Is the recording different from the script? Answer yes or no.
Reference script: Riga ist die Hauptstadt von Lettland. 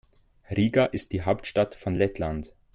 no